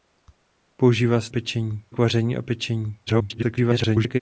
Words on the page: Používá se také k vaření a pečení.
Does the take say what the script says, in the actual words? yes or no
no